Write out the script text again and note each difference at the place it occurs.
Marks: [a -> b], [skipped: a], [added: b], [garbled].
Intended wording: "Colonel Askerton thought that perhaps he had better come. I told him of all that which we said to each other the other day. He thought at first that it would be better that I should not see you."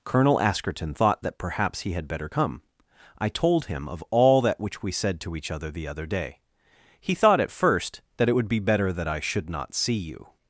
"Colonel Askerton thought that perhaps he had better come. I told him of all that which we said to each other the other day. He thought at first that it would be better that I should not see you."